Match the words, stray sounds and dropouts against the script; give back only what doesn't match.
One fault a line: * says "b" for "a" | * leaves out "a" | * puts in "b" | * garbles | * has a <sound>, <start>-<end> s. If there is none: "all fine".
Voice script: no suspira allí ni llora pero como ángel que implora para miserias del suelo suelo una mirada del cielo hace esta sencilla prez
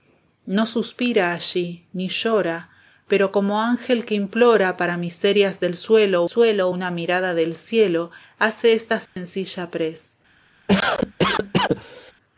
* has a dropout, 9.1-9.2 s
* has a cough, 10.7-12.1 s